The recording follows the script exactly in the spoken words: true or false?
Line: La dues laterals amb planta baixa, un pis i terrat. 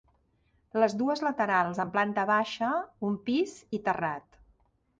false